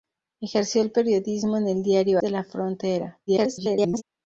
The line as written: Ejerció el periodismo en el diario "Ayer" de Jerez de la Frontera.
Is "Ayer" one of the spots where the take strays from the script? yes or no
yes